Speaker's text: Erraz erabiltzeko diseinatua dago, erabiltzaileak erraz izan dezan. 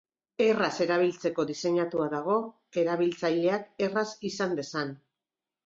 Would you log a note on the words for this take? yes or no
no